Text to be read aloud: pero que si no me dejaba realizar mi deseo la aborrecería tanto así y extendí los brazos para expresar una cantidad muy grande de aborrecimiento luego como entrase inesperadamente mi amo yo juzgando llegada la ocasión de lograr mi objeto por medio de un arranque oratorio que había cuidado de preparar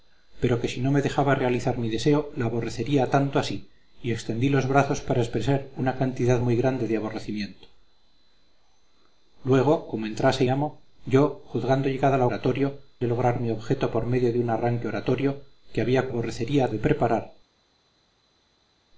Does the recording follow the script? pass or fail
fail